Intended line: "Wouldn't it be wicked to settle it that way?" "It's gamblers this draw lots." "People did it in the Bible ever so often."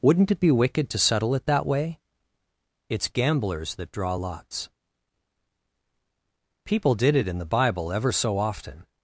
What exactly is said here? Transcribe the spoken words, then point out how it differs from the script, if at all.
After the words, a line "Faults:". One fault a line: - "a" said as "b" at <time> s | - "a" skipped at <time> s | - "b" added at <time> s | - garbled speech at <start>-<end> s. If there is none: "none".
"Wouldn't it be wicked to settle it that way?" "It's gamblers that draw lots." "People did it in the Bible ever so often."
Faults:
- "this" said as "that" at 3.8 s